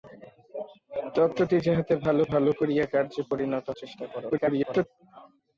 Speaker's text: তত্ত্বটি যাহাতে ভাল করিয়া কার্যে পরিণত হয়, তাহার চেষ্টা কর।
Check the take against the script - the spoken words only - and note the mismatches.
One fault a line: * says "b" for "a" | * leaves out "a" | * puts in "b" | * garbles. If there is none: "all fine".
* puts in "ভাল"
* leaves out "হয় তাহার"
* garbles